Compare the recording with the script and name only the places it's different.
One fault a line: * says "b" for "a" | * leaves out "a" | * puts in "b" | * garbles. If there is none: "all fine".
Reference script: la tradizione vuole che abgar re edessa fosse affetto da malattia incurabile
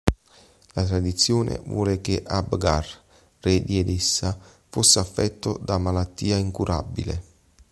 * puts in "di"